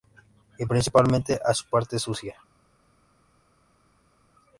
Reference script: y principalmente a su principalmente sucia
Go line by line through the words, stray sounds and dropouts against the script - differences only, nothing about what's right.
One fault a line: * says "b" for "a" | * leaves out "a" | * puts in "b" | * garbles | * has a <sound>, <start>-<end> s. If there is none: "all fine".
* says "parte" for "principalmente"